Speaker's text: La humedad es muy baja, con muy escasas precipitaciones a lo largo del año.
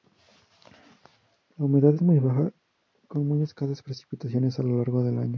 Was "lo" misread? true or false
false